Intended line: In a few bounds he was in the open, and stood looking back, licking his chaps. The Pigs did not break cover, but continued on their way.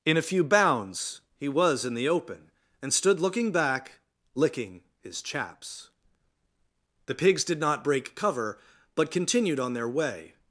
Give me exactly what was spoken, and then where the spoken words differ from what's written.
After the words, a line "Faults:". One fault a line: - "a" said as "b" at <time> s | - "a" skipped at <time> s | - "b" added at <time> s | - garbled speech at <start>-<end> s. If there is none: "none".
In a few bounds he was in the open, and stood looking back, licking his chaps. The Pigs did not break cover, but continued on their way.
Faults:
none